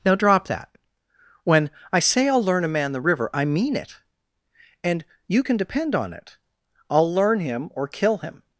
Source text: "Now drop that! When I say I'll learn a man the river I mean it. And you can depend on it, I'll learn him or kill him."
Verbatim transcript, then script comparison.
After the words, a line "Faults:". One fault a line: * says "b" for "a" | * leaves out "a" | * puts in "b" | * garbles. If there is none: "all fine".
"Now drop that! When I say I'll learn a man the river I mean it. And you can depend on it, I'll learn him or kill him."
Faults:
all fine